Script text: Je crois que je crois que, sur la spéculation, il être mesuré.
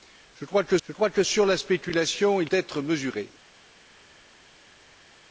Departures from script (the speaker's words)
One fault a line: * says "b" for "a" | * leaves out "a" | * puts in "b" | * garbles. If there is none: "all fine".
all fine